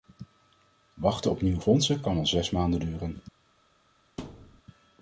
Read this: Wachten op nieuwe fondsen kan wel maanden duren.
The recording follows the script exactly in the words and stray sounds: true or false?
false